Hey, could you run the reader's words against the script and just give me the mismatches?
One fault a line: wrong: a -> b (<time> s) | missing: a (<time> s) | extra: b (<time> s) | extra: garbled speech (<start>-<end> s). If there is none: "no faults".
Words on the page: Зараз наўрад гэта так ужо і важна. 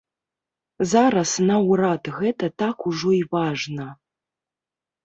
no faults